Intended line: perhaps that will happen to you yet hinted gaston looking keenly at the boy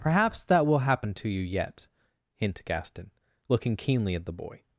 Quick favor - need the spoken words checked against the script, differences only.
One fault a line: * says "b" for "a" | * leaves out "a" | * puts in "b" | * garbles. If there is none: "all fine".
* says "hint" for "hinted"